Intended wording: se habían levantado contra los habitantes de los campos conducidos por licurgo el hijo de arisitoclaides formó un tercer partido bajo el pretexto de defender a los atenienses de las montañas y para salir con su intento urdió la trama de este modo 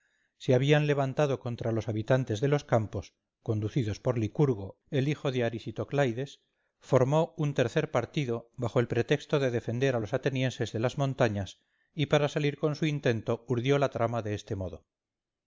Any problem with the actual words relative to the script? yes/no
no